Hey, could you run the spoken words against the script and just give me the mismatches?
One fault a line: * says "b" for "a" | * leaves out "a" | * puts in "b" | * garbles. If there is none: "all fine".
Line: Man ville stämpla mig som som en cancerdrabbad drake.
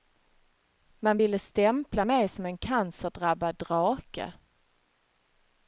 * leaves out "som"